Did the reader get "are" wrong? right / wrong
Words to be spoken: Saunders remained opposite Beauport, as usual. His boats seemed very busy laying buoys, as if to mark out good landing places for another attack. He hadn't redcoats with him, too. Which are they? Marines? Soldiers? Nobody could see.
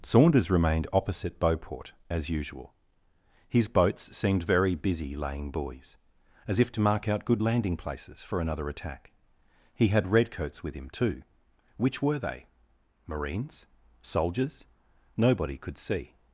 wrong